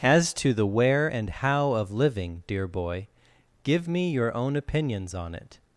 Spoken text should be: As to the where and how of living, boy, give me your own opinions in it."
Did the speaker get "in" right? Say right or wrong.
wrong